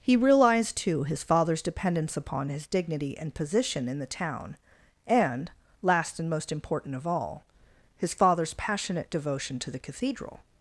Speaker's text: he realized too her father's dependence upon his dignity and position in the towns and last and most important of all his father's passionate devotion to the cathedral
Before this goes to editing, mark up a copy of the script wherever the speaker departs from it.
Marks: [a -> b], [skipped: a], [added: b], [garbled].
he realized too [her -> his] father's dependence upon his dignity and position in the [towns -> town] and last and most important of all his father's passionate devotion to the cathedral